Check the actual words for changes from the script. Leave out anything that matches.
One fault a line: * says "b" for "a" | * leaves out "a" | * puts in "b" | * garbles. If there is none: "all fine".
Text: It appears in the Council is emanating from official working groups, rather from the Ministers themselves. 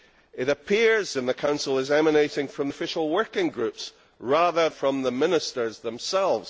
all fine